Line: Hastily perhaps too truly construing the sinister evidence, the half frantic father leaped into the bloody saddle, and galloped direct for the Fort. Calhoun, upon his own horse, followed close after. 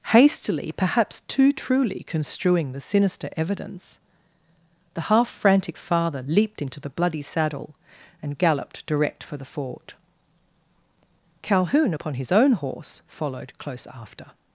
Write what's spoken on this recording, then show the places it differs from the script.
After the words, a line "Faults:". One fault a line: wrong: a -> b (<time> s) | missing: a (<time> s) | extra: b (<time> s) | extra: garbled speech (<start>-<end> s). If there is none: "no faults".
Hastily perhaps too truly construing the sinister evidence, the half frantic father leaped into the bloody saddle, and galloped direct for the Fort. Calhoun, upon his own horse, followed close after.
Faults:
no faults